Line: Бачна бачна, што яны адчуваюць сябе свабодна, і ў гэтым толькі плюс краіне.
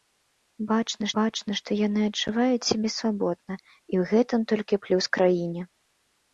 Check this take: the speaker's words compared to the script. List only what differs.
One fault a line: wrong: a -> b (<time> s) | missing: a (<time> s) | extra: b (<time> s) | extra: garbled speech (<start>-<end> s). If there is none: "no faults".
no faults